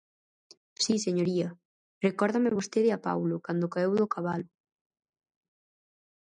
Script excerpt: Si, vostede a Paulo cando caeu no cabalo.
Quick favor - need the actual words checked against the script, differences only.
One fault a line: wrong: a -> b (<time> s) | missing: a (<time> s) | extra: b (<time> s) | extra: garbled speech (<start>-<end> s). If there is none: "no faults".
extra: señoría recórdame (1.1 s)
wrong: no -> do (4.0 s)